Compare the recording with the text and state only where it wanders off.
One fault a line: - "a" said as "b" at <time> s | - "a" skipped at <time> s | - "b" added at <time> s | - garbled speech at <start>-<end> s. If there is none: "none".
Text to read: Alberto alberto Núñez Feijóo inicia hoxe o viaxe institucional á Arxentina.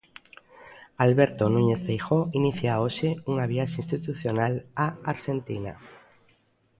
- "alberto" skipped at 1.4 s
- "o" said as "unha" at 3.3 s